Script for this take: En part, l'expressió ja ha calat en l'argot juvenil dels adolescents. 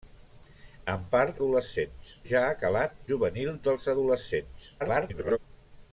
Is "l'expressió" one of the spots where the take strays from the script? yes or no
yes